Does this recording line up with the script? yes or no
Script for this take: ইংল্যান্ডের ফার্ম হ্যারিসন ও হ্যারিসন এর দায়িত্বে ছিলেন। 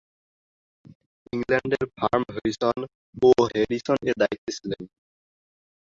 yes